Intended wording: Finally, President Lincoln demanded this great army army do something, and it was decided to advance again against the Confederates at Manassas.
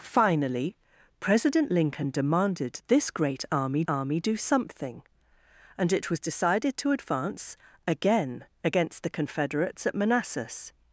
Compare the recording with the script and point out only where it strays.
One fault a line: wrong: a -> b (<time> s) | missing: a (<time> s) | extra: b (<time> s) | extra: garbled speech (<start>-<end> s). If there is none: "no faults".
no faults